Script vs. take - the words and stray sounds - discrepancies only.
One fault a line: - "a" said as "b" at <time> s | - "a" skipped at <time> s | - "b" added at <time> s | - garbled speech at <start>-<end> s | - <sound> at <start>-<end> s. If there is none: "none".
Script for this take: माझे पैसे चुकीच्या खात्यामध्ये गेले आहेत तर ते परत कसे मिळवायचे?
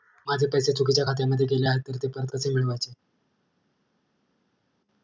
none